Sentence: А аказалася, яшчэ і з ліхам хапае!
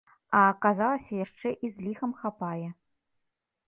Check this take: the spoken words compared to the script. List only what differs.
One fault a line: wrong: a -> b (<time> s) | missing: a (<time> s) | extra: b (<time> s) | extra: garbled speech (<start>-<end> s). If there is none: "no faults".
no faults